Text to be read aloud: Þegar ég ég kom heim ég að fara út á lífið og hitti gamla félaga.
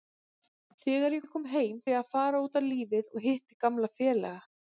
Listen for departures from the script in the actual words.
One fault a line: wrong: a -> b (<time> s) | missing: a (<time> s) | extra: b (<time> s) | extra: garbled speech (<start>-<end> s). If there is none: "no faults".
no faults